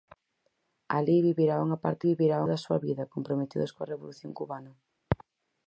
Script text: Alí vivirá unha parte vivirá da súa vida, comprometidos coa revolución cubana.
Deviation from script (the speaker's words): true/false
false